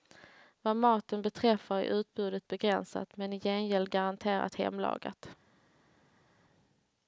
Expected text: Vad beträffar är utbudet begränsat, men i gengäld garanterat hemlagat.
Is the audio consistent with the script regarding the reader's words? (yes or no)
no